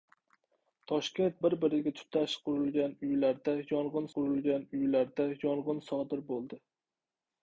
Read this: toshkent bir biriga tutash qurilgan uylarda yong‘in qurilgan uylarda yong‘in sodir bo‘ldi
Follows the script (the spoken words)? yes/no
yes